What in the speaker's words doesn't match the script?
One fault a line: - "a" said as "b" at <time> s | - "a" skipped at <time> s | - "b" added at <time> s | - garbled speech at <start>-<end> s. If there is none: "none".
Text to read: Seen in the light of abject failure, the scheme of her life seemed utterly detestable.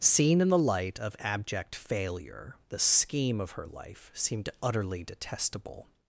none